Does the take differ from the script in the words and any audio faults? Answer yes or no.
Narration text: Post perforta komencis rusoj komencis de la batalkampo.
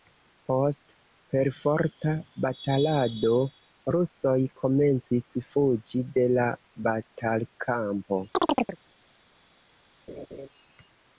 yes